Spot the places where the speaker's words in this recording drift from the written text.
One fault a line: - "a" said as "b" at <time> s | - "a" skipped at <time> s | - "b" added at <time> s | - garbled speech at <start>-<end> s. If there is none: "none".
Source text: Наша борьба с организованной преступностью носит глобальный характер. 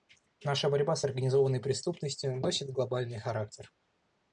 none